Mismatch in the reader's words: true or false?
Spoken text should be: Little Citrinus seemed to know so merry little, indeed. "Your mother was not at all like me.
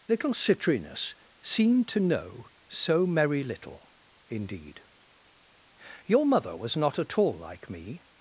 false